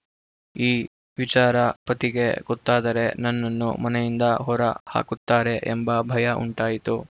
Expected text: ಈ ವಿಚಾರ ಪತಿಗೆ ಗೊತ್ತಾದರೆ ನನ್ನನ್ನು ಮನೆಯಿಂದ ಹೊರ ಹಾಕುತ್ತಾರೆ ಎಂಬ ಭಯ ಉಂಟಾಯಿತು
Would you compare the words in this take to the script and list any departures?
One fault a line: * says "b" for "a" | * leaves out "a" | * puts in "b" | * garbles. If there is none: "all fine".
all fine